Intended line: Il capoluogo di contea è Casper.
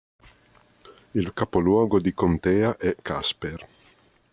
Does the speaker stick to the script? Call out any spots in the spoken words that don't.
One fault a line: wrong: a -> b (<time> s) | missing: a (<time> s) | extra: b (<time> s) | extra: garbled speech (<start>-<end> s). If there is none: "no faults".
no faults